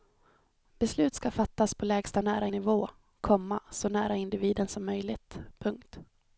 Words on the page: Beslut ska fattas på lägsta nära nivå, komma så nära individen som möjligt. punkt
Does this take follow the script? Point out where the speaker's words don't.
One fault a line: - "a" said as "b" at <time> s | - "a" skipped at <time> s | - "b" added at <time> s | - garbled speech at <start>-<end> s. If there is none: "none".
none